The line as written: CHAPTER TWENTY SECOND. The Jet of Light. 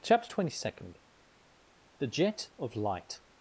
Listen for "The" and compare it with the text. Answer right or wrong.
right